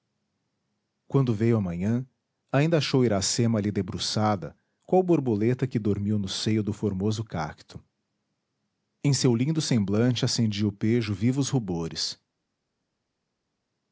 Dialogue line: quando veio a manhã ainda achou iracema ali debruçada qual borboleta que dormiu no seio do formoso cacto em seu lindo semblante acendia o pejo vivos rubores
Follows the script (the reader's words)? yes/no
yes